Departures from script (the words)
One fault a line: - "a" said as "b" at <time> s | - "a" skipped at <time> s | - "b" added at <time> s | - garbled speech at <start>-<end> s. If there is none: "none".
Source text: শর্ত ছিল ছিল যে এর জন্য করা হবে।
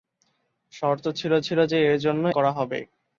none